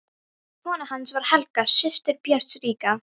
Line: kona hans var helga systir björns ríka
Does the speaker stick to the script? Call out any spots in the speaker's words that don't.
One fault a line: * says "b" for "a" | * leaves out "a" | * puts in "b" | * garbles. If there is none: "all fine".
all fine